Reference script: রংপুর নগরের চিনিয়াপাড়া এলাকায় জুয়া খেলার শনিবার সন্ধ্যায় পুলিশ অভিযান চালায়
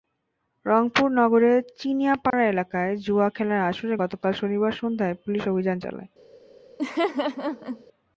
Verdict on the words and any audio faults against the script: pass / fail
fail